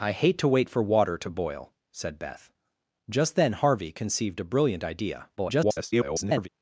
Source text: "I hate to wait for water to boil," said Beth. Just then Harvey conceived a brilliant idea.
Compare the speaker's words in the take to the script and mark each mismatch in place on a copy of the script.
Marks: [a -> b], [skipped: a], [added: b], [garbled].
"I hate to wait for water to boil," said Beth. Just then Harvey conceived a brilliant idea. [garbled]